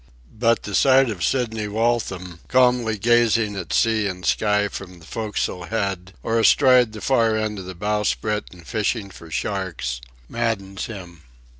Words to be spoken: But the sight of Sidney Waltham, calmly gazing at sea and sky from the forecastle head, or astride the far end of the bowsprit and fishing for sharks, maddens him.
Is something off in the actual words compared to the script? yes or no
no